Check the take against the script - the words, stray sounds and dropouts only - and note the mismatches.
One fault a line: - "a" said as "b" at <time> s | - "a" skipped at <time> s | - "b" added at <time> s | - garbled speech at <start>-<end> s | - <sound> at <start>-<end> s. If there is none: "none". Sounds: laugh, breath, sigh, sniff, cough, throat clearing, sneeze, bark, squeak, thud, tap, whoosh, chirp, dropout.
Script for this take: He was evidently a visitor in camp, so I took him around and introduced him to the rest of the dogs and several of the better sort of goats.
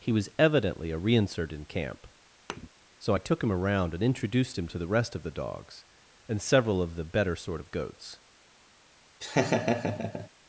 - "visitor" said as "reinsert" at 1.0 s
- thud at 2.5-2.7 s
- laugh at 9.2-10.3 s